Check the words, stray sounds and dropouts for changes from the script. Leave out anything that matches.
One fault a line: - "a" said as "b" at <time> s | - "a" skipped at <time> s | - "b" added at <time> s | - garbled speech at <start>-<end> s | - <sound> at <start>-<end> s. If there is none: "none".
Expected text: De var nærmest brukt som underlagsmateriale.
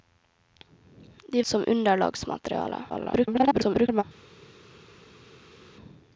- "var nærmest brukt" skipped at 1.4 s
- garbled speech at 2.9-4.0 s